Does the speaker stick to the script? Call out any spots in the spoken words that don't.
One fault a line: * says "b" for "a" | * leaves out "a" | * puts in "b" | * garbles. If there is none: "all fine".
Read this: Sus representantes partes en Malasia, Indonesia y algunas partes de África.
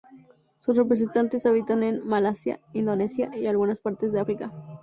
* says "habitan" for "partes"